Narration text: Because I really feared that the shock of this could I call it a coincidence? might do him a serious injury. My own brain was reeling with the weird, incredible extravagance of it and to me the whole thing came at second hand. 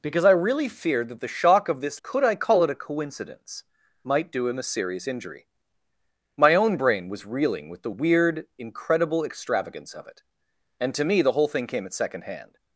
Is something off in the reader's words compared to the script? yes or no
no